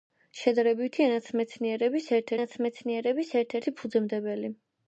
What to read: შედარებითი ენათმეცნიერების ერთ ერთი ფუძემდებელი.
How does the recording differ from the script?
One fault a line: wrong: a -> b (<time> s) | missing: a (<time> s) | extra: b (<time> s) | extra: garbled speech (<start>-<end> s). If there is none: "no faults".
extra: ენათმეცნიერების ერთ (2.4 s)